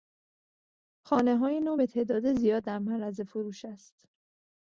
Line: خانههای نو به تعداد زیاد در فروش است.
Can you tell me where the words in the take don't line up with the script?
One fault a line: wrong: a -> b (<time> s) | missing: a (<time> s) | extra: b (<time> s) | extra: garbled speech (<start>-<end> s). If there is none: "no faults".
extra: معرض (2.8 s)